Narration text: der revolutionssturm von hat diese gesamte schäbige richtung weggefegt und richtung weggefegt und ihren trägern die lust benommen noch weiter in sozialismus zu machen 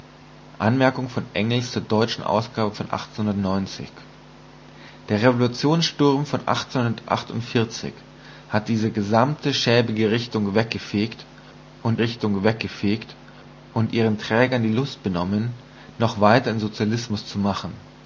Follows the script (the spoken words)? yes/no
yes